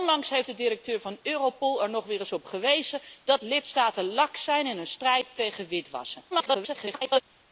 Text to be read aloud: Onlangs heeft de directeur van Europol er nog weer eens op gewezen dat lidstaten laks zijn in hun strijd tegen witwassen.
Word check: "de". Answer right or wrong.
right